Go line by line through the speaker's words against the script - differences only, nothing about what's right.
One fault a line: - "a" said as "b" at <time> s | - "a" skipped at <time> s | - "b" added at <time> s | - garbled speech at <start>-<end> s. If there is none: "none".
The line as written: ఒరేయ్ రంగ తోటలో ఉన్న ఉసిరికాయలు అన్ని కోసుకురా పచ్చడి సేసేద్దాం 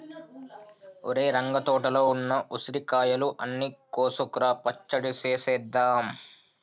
none